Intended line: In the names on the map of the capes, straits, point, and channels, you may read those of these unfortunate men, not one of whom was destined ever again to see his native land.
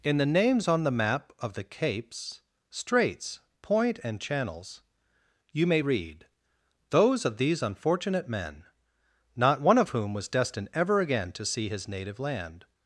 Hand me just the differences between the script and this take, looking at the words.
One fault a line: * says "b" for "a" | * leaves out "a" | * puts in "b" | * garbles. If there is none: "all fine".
all fine